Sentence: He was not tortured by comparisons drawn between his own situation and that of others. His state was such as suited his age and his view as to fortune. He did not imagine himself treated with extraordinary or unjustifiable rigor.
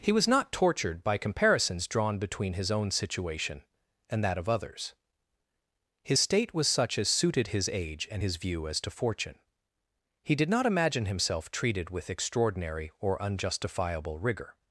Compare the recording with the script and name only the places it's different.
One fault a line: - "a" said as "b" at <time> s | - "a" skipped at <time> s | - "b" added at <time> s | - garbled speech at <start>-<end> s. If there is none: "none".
none